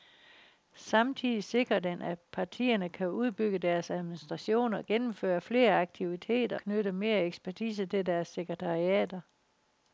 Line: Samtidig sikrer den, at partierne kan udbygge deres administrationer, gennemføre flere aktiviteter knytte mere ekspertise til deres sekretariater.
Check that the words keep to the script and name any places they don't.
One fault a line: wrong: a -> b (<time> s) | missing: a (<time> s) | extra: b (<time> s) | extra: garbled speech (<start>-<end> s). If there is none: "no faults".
no faults